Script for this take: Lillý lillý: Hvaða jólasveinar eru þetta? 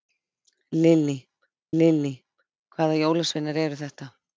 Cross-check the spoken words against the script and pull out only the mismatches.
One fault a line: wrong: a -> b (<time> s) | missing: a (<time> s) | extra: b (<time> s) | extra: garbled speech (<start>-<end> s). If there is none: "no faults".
no faults